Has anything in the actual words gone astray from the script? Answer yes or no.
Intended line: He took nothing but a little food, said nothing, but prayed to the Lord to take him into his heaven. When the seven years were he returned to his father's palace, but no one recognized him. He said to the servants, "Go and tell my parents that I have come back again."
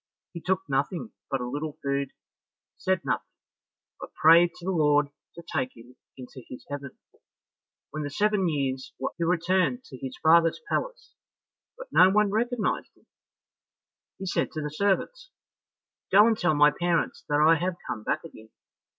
no